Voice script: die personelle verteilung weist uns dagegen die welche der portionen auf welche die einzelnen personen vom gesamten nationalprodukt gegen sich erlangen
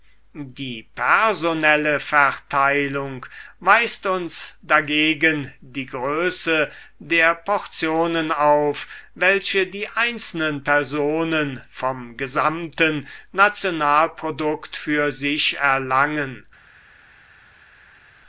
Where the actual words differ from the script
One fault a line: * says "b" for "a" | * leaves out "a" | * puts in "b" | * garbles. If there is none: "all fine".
* says "größe" for "welche"
* says "für" for "gegen"